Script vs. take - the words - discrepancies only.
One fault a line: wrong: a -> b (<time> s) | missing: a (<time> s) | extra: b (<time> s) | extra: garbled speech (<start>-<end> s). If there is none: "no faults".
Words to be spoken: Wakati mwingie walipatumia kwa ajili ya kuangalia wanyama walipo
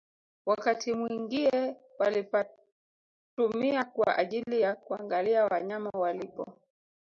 no faults